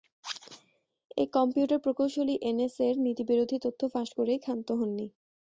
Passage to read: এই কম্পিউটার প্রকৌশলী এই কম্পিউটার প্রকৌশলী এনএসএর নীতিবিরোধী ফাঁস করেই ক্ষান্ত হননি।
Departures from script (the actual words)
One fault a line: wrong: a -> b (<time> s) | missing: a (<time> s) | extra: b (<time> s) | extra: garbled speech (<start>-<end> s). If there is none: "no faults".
missing: এই কম্পিউটার প্রকৌশলী (2.4 s)
extra: তথ্য (3.6 s)